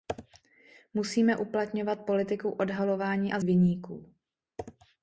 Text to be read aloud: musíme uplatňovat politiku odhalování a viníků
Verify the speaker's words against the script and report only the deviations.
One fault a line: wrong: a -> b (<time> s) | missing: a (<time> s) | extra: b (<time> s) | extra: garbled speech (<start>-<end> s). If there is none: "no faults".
no faults